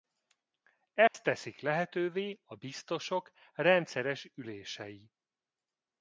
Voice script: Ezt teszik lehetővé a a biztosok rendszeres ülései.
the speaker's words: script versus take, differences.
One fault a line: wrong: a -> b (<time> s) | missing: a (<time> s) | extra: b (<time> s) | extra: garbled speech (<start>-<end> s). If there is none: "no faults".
missing: a (2.5 s)